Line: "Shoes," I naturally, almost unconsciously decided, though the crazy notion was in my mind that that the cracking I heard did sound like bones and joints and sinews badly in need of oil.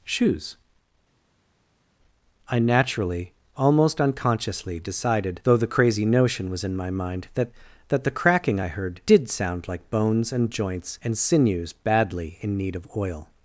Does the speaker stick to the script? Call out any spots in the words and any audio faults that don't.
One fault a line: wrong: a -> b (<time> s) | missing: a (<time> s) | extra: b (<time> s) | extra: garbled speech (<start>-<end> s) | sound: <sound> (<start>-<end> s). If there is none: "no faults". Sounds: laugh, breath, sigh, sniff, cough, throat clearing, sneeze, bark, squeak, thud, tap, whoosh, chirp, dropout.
no faults